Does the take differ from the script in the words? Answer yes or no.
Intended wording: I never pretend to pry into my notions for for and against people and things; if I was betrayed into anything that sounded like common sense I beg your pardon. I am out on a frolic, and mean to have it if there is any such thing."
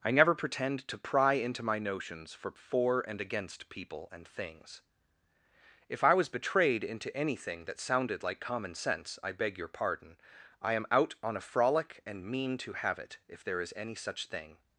no